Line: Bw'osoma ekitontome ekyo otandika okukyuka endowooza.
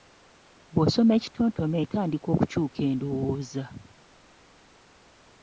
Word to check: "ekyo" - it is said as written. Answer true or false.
false